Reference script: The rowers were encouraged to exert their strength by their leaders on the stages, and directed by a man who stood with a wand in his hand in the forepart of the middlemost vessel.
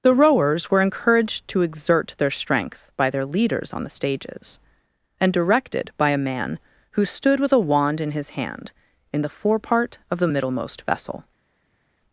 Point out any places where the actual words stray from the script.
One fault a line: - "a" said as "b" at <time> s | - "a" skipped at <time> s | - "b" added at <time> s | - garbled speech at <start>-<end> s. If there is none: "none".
none